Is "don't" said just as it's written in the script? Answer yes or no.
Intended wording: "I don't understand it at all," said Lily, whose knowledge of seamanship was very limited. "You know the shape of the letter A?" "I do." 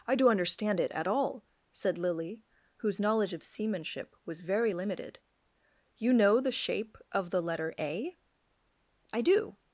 no